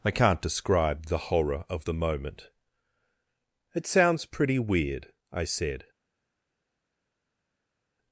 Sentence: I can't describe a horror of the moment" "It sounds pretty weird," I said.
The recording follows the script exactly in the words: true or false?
false